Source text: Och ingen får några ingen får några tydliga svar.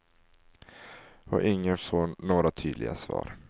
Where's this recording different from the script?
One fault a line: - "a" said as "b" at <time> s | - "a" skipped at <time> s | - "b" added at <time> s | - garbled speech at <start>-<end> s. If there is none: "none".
- "ingen får några" skipped at 2.5 s